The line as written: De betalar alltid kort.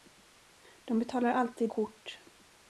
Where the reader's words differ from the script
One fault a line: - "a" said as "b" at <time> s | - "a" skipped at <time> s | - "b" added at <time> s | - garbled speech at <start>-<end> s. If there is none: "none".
none